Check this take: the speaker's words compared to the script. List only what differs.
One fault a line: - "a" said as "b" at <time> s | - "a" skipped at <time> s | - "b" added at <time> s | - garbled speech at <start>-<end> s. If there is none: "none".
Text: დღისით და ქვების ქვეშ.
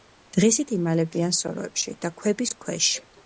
- "იმალებიან სოროებში" added at 0.8 s